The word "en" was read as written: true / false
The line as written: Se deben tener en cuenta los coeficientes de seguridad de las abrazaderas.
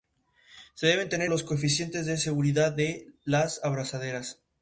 false